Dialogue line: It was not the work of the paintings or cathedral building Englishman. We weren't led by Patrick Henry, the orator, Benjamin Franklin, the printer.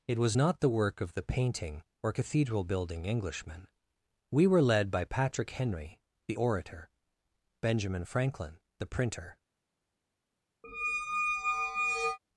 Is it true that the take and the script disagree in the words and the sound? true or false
true